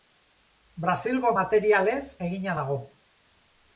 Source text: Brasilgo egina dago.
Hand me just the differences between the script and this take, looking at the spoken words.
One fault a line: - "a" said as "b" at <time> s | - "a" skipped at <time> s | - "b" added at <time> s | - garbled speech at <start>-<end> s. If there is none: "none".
- "materialez" added at 1.4 s